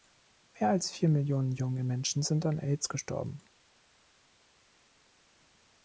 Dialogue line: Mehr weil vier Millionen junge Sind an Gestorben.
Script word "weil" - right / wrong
wrong